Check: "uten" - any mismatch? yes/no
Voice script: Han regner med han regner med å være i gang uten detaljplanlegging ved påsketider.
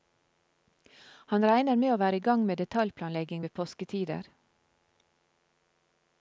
yes